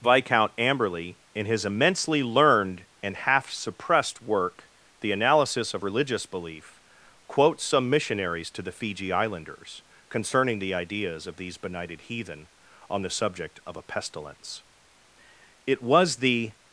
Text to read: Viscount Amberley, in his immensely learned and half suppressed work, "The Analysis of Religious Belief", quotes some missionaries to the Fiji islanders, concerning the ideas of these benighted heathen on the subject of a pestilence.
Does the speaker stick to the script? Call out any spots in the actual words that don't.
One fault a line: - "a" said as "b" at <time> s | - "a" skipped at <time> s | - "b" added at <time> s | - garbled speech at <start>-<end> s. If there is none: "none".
- "It was the" added at 15.7 s